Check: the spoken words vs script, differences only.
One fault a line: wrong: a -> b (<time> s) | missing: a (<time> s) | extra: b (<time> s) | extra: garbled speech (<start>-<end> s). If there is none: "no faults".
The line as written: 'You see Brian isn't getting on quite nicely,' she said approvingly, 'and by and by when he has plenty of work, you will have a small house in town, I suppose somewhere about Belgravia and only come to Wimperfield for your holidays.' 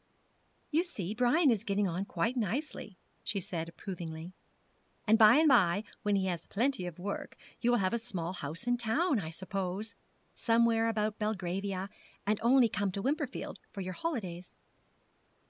wrong: isn't -> is (1.5 s)